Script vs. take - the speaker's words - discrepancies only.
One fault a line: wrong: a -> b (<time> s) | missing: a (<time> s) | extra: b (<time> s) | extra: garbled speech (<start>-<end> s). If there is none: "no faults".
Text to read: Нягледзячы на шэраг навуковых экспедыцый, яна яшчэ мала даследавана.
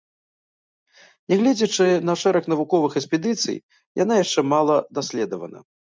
no faults